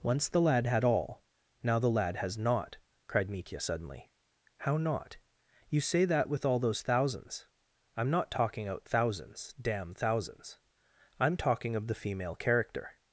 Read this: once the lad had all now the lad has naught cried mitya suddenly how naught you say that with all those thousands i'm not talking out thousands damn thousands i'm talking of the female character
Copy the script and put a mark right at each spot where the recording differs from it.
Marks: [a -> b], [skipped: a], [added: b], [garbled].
once the lad had all now the lad has naught cried mitya suddenly how naught you say that with all those thousands i'm not talking out thousands damn thousands i'm talking of the female character